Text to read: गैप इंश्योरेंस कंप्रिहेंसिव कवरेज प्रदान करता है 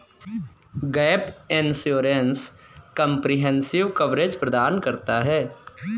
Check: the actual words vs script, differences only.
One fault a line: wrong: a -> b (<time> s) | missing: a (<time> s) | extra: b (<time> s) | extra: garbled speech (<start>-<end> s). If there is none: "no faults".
no faults